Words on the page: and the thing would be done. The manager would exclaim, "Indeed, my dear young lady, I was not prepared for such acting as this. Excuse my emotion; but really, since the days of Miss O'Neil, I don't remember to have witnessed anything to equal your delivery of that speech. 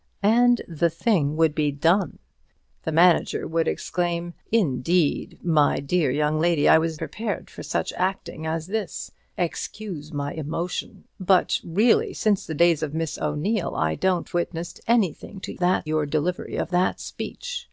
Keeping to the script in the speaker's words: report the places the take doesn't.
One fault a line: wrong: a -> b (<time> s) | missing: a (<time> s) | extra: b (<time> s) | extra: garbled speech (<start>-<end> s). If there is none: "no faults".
missing: not (7.0 s)
missing: remember to have (14.3 s)
wrong: equal -> that (15.6 s)